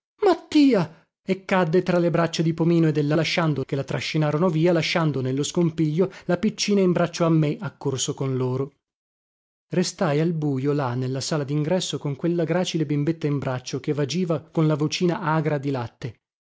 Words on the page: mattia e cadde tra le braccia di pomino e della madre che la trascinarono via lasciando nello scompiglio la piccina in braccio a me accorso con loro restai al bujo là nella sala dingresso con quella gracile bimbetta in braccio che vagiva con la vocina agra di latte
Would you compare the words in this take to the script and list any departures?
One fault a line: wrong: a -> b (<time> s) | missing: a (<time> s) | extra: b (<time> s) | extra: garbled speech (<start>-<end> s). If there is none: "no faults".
wrong: madre -> lasciando (3.1 s)